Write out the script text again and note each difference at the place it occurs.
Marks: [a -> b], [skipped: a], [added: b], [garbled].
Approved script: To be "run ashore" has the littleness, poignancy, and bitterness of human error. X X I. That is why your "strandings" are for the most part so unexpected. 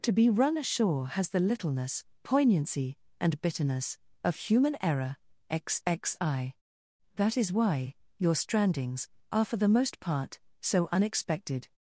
To be "run ashore" has the littleness, poignancy, and bitterness of human error. X X I. That is why your "strandings" are for the most part so unexpected.